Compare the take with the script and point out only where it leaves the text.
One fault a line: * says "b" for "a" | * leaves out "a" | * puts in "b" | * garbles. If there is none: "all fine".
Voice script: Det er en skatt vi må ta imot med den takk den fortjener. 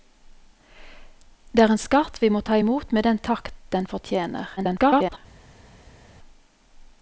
* garbles